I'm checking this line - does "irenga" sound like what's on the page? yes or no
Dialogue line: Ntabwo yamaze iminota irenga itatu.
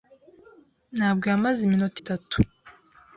no